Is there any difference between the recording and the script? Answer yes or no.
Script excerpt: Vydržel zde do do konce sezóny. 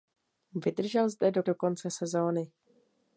no